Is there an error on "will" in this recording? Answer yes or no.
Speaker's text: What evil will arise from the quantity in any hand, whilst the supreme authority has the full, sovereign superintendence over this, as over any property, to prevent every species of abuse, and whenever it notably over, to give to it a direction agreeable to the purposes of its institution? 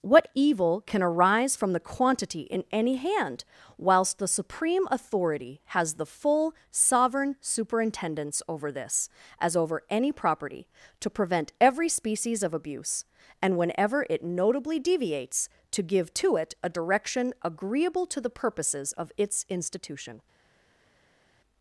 yes